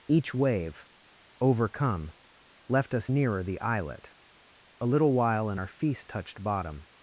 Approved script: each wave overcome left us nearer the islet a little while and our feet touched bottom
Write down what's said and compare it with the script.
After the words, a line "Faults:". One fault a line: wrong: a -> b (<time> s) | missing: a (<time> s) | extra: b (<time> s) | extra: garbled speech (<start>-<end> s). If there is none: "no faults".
each wave overcome left us nearer the islet a little while and our feast touched bottom
Faults:
wrong: feet -> feast (5.7 s)